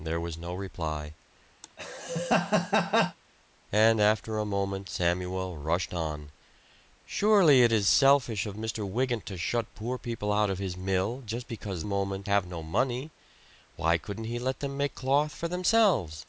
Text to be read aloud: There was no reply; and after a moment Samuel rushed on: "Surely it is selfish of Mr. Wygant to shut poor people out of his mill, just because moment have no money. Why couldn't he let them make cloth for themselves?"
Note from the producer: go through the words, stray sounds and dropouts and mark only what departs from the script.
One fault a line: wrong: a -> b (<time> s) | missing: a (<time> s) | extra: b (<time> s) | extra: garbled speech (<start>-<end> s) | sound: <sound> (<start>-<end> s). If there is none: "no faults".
sound: laugh (1.6-3.2 s)